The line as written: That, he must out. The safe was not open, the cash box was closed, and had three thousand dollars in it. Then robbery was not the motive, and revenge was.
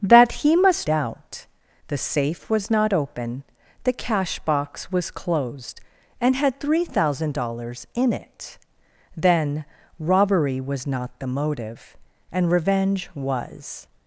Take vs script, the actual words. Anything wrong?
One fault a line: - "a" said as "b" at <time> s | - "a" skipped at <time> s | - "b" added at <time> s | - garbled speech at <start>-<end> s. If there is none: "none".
none